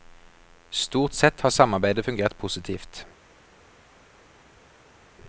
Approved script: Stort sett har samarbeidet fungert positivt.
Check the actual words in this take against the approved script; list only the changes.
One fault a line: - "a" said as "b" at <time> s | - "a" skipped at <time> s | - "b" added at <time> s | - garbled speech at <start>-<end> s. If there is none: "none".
none